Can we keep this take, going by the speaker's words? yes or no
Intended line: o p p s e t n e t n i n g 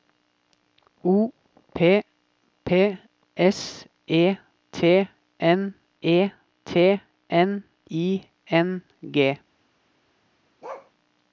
yes